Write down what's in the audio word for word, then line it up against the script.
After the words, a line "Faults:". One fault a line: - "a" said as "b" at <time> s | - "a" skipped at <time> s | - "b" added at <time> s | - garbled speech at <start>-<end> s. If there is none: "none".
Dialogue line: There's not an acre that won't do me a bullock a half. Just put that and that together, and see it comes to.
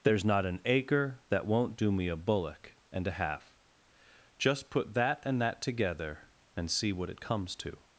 There's not an acre that won't do me a bullock and a half. Just put that and that together, and see what it comes to.
Faults:
- "and" added at 2.9 s
- "what" added at 6.9 s